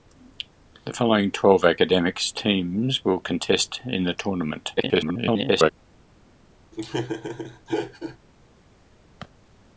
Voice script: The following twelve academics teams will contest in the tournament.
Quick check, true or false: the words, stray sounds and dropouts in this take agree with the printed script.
false